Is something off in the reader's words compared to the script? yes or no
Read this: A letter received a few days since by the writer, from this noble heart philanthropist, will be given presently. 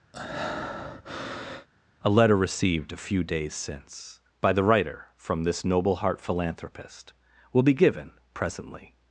no